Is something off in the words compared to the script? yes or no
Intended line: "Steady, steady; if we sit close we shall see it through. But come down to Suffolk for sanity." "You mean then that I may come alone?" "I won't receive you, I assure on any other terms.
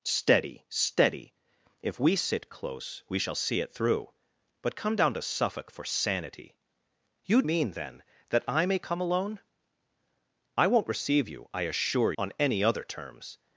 no